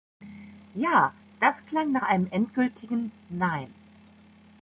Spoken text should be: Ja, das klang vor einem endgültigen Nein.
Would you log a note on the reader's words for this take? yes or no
yes